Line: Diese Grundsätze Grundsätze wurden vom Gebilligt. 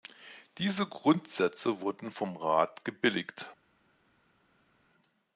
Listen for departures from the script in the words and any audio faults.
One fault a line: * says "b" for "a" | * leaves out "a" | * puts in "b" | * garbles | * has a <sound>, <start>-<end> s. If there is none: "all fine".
* leaves out "Grundsätze"
* puts in "Rat"